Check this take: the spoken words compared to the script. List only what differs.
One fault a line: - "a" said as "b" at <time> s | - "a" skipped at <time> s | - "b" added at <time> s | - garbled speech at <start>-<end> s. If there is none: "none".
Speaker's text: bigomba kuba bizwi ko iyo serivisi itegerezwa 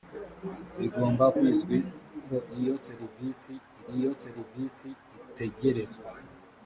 - "kuba" skipped at 1.2 s
- "iyo serivisi" added at 4.0 s